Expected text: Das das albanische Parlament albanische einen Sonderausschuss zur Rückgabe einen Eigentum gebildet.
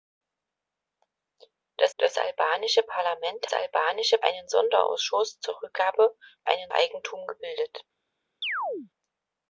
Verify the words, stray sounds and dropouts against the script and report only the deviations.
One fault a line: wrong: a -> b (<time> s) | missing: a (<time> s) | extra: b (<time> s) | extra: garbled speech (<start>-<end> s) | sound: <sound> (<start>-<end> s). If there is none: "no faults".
sound: chirp (8.4-8.9 s)